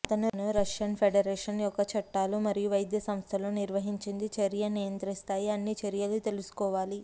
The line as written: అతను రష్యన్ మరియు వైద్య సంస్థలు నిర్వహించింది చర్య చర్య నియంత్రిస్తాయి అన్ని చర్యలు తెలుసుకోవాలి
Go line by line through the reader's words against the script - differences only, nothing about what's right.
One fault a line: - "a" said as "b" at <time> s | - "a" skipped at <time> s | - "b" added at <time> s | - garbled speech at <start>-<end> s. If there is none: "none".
- "ఫెడరేషన్ యొక్క చట్టాలు" added at 0.9 s
- "చర్య" skipped at 4.6 s